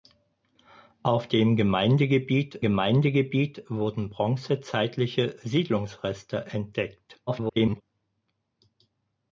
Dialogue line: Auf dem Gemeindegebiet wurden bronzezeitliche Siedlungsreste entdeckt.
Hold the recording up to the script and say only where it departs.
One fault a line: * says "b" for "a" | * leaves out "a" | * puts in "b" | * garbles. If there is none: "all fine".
* puts in "Gemeindegebiet"
* garbles